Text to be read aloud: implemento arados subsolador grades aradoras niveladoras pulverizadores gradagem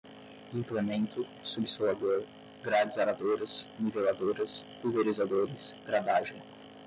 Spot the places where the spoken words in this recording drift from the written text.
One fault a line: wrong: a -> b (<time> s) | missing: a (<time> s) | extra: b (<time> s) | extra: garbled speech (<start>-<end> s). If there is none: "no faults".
missing: arados (1.3 s)